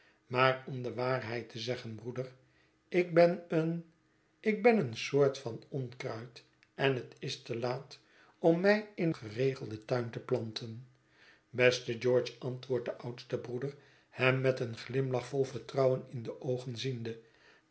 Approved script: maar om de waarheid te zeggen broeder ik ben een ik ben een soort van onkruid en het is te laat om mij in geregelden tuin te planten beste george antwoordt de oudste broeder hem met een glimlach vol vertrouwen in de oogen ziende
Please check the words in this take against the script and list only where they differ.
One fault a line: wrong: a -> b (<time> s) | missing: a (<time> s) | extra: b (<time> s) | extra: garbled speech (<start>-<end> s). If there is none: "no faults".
no faults